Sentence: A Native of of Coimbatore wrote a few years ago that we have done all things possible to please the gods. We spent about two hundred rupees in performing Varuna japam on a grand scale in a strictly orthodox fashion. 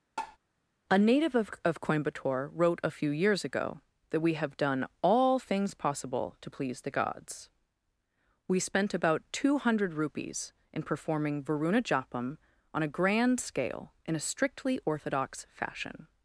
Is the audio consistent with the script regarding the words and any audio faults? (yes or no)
no